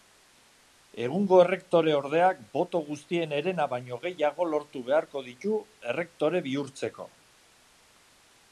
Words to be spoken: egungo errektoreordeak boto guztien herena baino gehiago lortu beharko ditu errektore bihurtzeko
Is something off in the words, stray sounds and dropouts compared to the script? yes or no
no